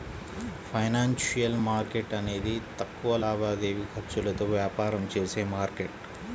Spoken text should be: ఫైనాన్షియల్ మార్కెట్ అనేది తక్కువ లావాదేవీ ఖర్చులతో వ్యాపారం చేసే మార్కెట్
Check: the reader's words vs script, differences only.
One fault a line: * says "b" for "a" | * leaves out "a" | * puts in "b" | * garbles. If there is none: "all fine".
all fine